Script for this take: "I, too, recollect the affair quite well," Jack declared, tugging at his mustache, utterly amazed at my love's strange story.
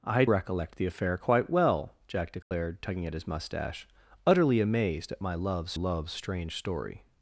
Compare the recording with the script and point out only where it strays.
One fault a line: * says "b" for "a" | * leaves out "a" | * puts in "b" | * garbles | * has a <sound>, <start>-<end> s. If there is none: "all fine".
* leaves out "too"
* has a dropout, 2.4-2.5 s
* puts in "love's"